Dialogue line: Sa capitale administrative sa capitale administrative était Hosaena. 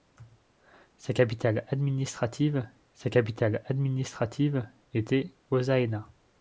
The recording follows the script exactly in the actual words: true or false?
true